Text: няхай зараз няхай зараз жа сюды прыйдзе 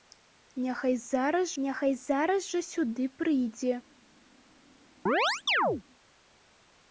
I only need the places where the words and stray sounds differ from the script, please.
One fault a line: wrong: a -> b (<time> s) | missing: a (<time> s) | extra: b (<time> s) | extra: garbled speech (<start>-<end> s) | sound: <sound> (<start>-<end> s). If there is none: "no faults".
sound: chirp (5.1-5.8 s)